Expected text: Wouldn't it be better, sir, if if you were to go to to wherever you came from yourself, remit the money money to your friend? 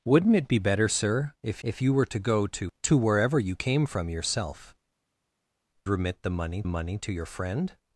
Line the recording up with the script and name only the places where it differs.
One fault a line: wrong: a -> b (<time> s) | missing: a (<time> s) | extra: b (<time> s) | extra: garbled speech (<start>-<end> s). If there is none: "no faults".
no faults